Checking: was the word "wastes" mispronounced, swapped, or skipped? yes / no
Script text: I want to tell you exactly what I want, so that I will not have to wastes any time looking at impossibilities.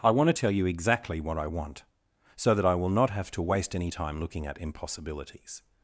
yes